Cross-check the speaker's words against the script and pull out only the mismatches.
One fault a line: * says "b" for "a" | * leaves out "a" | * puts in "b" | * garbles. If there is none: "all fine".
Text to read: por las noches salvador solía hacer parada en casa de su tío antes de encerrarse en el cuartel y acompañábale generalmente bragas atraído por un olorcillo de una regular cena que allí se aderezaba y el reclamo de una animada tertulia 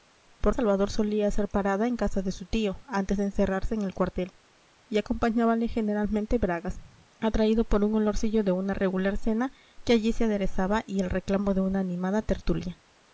* leaves out "las noches"